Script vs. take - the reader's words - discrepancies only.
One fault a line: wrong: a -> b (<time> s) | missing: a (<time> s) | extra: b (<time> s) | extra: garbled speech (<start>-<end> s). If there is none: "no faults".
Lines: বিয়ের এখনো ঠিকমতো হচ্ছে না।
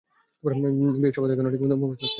extra: শপথ (1.1 s)
extra: মুখস্থ (1.8 s)